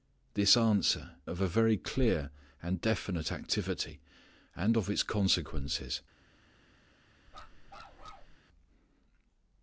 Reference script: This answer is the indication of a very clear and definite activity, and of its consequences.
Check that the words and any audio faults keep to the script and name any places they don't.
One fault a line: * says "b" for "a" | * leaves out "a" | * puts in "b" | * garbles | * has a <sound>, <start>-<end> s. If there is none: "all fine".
* leaves out "is the indication"
* has a bark, 7.3-8.4 s